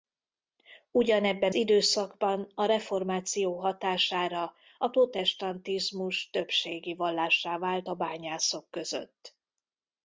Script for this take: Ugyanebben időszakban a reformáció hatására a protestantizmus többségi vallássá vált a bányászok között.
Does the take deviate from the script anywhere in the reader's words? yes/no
no